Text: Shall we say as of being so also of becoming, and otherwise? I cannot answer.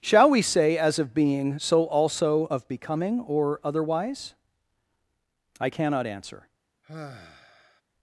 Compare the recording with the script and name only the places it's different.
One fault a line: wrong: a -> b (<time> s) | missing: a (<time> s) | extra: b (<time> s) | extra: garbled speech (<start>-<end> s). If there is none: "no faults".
wrong: and -> or (3.2 s)